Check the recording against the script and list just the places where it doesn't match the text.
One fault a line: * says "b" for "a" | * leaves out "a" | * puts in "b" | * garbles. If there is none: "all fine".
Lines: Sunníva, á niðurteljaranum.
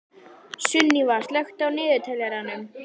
* puts in "slökktu"